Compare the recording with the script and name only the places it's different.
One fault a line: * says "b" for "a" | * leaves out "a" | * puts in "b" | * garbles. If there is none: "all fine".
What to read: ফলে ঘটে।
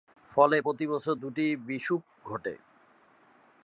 * puts in "প্রতিবছর দুটি বিষুব"